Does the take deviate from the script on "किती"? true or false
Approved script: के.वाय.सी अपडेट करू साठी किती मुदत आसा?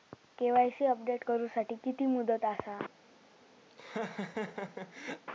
false